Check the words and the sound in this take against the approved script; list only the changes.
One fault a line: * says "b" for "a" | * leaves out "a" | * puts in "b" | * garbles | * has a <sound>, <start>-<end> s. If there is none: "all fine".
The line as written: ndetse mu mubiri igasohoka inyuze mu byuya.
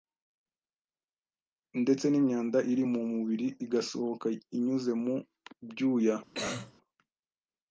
* puts in "n'imyanda iri"
* has a cough, 6.3-6.7 s